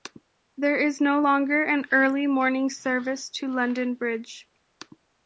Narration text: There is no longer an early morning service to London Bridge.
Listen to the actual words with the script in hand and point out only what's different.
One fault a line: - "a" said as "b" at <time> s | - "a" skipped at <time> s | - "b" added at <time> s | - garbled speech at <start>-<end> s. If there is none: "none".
none